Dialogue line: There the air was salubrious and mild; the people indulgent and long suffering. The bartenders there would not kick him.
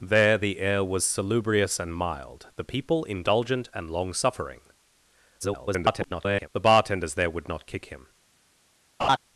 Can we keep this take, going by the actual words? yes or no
no